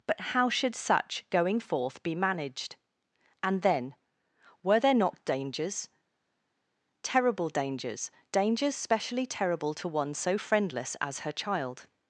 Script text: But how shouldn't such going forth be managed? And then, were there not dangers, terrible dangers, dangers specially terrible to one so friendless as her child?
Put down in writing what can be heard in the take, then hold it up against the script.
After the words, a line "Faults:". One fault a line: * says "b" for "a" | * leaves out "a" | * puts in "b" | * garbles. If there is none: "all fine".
But how should such going forth be managed? And then, were there not dangers, terrible dangers, dangers specially terrible to one so friendless as her child?
Faults:
* says "should" for "shouldn't"